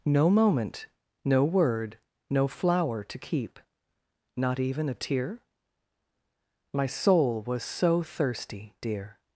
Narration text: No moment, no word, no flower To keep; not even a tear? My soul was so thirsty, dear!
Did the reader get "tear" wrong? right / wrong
right